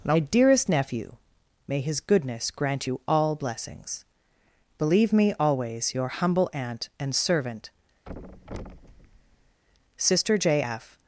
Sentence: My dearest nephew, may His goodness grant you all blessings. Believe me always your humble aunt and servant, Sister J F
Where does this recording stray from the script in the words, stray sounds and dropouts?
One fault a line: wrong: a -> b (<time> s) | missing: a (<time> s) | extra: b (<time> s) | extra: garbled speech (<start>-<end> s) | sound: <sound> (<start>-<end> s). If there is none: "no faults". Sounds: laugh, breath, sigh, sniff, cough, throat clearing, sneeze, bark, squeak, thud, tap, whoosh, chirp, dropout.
sound: thud (8.1-9.6 s)